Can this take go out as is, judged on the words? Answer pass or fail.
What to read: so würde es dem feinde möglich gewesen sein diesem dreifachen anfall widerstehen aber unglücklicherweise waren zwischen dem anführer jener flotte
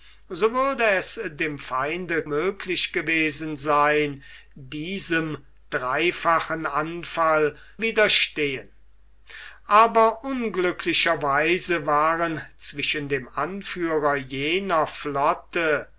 pass